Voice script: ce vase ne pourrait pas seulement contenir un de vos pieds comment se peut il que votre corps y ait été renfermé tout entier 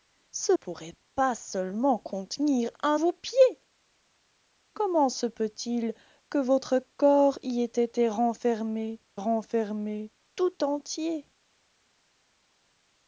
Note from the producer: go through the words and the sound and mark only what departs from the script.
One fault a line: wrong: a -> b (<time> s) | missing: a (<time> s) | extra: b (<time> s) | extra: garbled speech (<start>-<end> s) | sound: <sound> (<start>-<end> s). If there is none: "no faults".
missing: vase ne (0.5 s)
missing: de (3.0 s)
extra: renfermé (9.1 s)